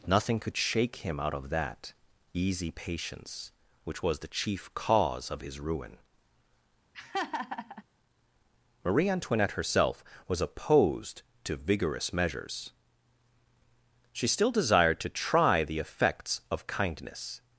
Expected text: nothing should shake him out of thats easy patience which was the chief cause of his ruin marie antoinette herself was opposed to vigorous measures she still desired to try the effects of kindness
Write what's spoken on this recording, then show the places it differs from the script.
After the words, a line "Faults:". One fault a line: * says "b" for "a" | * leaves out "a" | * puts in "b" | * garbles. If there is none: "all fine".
nothing could shake him out of that easy patience which was the chief cause of his ruin marie antoinette herself was opposed to vigorous measures she still desired to try the effects of kindness
Faults:
* says "could" for "should"
* says "that" for "thats"